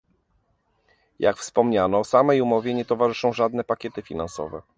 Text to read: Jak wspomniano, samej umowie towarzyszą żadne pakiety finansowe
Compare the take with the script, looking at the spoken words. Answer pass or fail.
fail